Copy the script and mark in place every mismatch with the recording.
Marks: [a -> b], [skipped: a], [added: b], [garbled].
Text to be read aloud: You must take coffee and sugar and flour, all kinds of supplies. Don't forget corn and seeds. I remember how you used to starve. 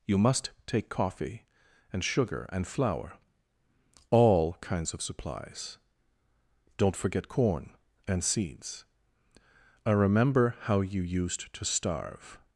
You must take coffee and sugar and flour, all kinds of supplies. Don't forget corn and seeds. I remember how you used to starve.